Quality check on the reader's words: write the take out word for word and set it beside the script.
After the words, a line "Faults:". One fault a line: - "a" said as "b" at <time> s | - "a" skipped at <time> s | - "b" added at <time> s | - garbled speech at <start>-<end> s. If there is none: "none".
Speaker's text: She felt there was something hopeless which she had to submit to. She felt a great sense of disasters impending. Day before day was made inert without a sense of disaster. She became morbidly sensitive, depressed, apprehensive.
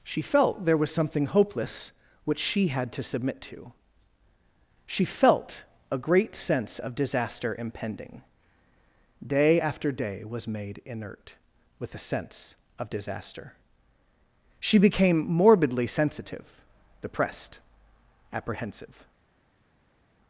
She felt there was something hopeless which she had to submit to. She felt a great sense of disaster impending. Day after day was made inert with a sense of disaster. She became morbidly sensitive, depressed, apprehensive.
Faults:
- "disasters" said as "disaster" at 7.0 s
- "before" said as "after" at 9.6 s
- "without" said as "with" at 11.8 s